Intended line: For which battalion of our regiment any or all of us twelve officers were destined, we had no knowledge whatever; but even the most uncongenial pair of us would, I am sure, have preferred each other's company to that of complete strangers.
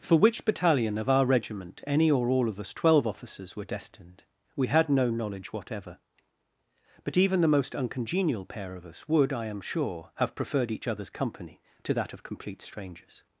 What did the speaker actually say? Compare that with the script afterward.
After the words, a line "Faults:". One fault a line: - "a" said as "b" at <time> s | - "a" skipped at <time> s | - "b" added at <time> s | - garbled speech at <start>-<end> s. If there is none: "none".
For which battalion of our regiment any or all of us twelve officers were destined, we had no knowledge whatever; but even the most uncongenial pair of us would, I am sure, have preferred each other's company to that of complete strangers.
Faults:
none